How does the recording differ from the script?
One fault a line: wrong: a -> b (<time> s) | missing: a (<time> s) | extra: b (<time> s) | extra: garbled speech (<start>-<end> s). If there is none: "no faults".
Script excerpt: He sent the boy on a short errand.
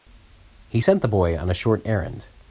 no faults